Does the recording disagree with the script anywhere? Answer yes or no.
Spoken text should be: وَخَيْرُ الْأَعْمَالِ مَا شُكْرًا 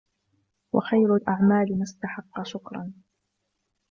yes